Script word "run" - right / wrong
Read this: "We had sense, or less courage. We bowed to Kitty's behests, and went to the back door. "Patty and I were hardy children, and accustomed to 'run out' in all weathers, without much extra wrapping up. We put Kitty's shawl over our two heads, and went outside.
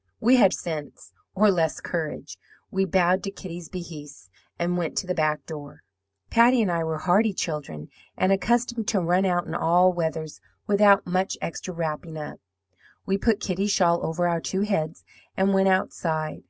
right